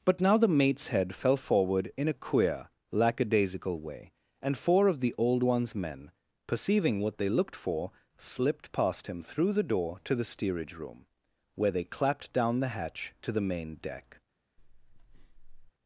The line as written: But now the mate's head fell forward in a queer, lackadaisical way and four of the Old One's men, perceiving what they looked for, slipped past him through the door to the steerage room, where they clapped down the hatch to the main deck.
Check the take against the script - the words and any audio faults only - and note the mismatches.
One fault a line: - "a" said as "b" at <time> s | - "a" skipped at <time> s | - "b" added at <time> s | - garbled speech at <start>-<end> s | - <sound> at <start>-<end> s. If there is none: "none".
- breath at 14.6-15.7 s